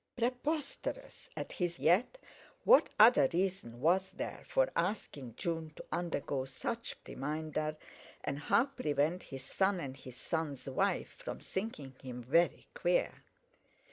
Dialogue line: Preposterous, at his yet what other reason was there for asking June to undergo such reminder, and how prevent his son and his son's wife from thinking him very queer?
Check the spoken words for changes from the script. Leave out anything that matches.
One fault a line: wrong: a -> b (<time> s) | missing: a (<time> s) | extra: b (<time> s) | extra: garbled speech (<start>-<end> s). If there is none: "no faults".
no faults